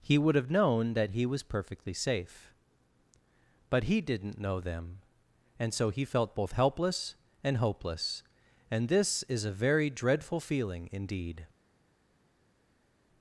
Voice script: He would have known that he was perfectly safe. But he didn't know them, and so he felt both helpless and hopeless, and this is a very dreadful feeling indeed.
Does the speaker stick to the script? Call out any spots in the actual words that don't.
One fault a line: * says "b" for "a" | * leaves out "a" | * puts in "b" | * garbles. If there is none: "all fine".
all fine